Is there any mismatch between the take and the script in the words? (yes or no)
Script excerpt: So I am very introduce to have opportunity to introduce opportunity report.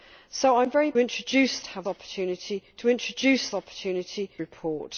no